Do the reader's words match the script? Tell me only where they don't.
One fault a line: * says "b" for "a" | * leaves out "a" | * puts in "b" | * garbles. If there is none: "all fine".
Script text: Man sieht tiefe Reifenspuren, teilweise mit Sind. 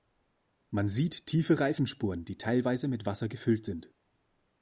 * puts in "die"
* puts in "Wasser gefüllt"